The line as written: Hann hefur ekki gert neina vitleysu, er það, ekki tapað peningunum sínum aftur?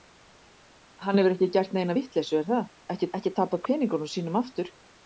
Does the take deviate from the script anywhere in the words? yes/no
yes